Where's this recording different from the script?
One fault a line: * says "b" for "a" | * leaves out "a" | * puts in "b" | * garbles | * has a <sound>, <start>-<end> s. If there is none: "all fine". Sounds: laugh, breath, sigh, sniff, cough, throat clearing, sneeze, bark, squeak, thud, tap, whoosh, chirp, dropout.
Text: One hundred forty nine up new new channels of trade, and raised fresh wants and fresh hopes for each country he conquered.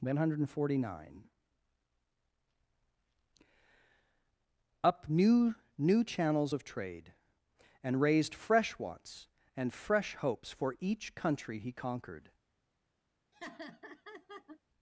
* has a laugh, 13.3-14.6 s